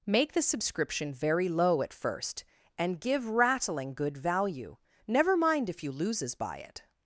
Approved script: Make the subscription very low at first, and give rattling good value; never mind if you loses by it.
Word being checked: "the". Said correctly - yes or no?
yes